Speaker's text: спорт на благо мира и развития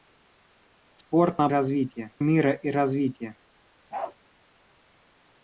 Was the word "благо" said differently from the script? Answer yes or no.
yes